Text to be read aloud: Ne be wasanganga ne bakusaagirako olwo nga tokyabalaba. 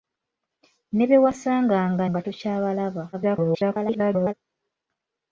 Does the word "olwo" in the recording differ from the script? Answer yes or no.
yes